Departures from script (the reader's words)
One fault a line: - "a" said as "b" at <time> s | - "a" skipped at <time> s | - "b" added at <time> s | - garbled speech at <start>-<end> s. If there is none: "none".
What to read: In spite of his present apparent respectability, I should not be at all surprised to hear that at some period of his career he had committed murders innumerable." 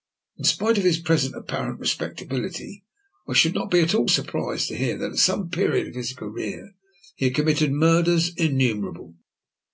none